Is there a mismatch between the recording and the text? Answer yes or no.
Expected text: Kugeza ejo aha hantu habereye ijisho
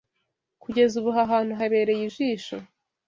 yes